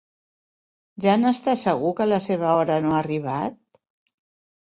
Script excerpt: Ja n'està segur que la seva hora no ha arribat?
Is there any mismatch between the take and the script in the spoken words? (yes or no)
no